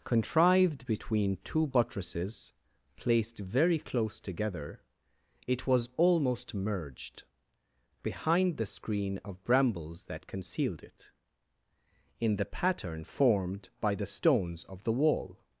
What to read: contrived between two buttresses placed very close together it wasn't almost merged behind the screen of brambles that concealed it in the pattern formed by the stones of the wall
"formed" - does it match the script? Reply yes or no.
yes